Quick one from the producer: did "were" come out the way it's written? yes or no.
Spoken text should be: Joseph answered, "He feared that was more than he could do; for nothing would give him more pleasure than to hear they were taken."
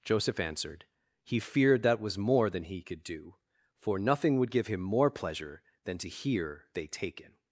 no